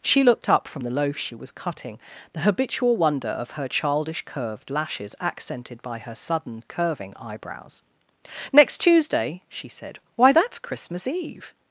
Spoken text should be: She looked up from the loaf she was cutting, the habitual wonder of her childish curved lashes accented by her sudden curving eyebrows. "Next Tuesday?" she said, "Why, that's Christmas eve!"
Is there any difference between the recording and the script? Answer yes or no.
no